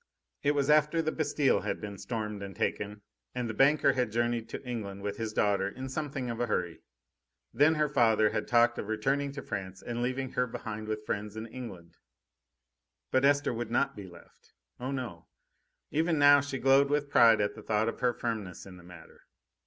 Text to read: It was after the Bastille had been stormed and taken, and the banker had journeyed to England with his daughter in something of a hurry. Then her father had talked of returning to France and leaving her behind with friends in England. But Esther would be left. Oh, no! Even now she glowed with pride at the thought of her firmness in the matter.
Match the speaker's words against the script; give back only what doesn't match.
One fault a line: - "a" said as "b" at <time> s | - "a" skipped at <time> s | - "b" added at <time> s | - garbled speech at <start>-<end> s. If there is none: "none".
- "not" added at 13.7 s